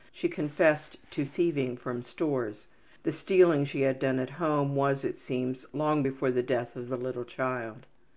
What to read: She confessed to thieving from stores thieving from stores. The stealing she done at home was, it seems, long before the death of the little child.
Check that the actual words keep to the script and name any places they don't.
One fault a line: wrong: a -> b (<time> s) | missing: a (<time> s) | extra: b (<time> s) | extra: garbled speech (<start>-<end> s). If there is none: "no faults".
missing: thieving from stores (2.7 s)
extra: had (3.8 s)